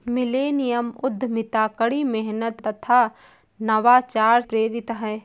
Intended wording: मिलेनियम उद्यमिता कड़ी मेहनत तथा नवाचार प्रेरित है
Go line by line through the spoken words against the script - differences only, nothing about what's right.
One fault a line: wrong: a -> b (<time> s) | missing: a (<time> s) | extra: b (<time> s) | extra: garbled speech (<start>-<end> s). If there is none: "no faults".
no faults